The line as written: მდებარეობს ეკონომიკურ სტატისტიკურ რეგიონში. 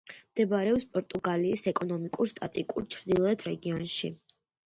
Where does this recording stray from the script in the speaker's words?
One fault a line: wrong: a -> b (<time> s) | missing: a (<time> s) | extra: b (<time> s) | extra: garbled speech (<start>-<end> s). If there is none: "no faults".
extra: პორტუგალიის (0.9 s)
extra: ჩრდილოეთ (3.0 s)